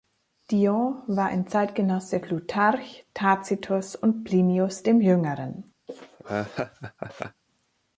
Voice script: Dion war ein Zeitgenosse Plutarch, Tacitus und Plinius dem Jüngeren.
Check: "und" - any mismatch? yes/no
no